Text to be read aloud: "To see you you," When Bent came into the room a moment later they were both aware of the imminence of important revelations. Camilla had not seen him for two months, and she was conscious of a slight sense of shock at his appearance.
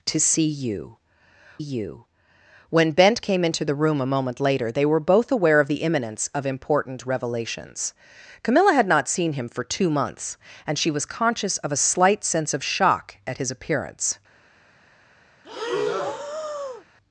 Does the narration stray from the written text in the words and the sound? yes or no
yes